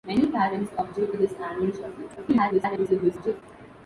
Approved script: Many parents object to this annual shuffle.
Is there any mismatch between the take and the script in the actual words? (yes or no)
yes